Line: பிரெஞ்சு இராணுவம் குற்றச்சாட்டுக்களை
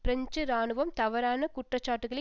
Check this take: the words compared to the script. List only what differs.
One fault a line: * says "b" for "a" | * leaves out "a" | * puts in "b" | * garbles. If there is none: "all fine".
* puts in "தவறான"